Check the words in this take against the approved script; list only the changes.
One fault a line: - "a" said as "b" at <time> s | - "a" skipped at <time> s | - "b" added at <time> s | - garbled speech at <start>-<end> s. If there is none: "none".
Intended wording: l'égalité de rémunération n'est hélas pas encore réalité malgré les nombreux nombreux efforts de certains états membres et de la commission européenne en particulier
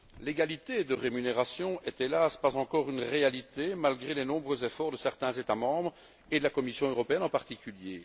- "une" added at 2.9 s
- "nombreux" skipped at 4.6 s